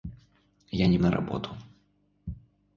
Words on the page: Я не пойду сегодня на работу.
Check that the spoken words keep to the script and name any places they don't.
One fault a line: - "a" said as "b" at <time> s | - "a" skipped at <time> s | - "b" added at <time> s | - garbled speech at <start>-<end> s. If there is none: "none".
- "пойду сегодня" skipped at 1.0 s